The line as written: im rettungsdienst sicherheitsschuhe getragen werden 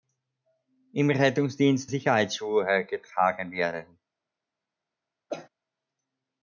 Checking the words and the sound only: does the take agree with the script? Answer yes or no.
no